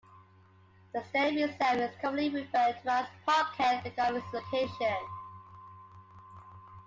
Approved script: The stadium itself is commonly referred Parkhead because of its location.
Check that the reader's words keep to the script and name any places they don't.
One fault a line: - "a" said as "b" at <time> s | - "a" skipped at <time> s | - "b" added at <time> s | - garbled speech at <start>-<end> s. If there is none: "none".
- "to as" added at 2.8 s